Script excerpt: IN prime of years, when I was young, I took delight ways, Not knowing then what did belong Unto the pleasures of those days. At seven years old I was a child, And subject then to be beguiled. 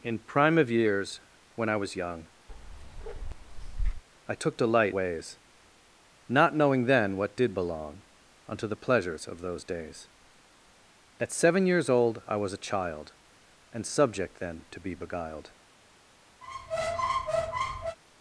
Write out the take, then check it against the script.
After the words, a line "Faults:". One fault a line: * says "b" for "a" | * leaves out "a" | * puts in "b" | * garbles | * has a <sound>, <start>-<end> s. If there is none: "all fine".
IN prime of years, when I was young, I took delight ways, Not knowing then what did belong Unto the pleasures of those days. At seven years old I was a child, And subject then to be beguiled.
Faults:
* has a bark, 2.5-4.0 s
* has a squeak, 16.4-18.0 s